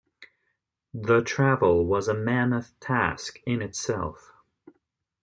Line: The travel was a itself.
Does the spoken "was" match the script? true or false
true